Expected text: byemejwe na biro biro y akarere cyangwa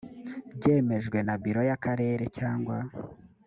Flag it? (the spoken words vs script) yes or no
yes